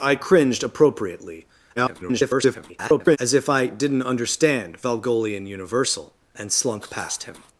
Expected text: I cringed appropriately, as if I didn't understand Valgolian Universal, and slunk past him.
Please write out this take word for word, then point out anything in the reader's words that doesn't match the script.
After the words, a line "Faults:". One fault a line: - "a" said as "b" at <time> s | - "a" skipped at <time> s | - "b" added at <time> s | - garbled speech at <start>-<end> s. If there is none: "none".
I cringed appropriately, [garbled] as if I didn't understand Valgolian Universal, and slunk past him.
Faults:
- garbled speech at 1.8-3.2 s